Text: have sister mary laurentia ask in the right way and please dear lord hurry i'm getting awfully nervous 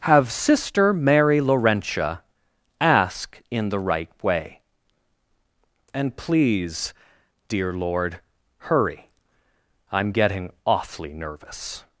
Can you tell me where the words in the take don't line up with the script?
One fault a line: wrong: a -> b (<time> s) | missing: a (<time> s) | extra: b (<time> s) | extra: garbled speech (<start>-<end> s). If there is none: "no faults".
no faults